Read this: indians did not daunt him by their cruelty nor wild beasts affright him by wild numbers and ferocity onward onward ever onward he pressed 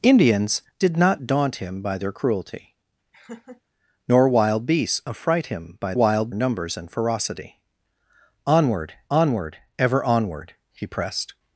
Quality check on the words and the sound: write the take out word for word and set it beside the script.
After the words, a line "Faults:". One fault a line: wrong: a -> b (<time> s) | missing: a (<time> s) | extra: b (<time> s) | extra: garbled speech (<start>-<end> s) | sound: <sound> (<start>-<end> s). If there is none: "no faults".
indians did not daunt him by their cruelty nor wild beasts affright him by wild numbers and ferocity onward onward ever onward he pressed
Faults:
sound: laugh (3.1-3.6 s)